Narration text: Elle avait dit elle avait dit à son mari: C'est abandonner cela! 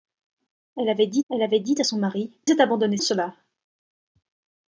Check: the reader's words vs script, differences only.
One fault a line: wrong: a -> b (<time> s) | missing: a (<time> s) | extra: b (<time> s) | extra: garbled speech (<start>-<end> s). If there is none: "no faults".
no faults